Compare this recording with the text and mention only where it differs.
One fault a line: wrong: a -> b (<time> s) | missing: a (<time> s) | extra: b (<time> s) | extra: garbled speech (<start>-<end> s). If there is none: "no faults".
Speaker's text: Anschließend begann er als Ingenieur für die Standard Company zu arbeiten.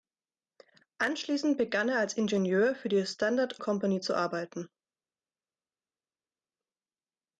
no faults